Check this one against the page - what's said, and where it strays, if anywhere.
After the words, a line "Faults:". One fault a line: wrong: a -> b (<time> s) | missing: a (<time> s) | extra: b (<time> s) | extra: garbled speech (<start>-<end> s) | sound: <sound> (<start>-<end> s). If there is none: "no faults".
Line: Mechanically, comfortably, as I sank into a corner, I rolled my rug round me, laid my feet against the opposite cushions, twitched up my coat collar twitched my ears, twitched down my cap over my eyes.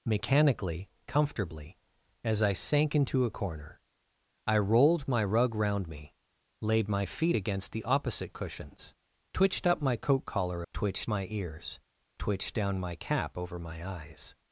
Mechanically, comfortably, as I sank into a corner, I rolled my rug round me, laid my feet against the opposite cushions, twitched up my coat collar twitched my ears, twitched down my cap over my eyes.
Faults:
no faults